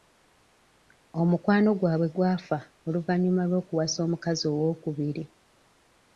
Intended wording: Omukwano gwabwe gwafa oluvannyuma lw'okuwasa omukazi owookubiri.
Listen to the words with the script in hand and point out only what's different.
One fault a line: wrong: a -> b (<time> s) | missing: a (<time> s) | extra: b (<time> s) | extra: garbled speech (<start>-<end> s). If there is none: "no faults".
no faults